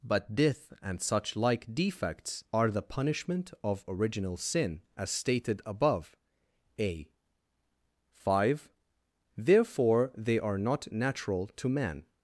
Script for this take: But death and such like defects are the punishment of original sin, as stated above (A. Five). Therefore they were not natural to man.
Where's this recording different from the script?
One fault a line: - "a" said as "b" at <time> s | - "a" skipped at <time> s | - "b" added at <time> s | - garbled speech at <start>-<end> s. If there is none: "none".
- "were" said as "are" at 10.4 s